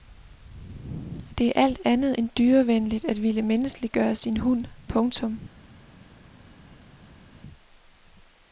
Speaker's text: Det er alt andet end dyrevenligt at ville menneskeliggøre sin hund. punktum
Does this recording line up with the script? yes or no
yes